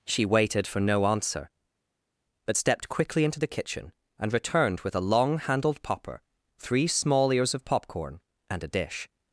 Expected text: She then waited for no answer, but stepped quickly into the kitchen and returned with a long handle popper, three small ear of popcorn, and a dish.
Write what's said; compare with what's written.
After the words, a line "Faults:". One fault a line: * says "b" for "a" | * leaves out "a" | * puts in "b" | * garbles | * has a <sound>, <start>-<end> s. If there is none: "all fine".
She waited for no answer, but stepped quickly into the kitchen and returned with a long handled popper, three small ears of popcorn, and a dish.
Faults:
* leaves out "then"
* says "handled" for "handle"
* says "ears" for "ear"